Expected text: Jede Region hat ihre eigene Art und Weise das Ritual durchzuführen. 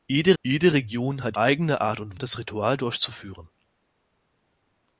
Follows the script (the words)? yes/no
no